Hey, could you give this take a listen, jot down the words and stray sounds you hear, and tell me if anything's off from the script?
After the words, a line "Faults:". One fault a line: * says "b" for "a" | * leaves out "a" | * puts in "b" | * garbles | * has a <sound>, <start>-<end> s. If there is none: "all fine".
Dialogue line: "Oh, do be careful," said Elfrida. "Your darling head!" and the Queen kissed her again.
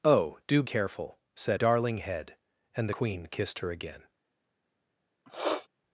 "Oh, do careful," said Darling head!" and Queen kissed her again.
Faults:
* leaves out "be"
* leaves out "Elfrida Your"
* leaves out "the"
* has a sniff, 5.3-5.7 s